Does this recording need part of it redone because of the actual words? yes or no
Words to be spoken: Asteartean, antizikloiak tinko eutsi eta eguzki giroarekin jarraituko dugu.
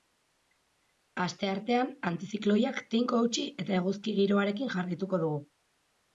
no